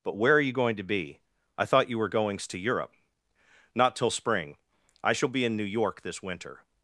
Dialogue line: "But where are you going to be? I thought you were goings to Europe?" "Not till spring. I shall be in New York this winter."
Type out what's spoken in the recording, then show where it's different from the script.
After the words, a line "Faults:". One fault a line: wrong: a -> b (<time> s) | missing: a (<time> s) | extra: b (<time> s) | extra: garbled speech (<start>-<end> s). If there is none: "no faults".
"But where are you going to be? I thought you were goings to Europe?" "Not till spring. I shall be in New York this winter."
Faults:
no faults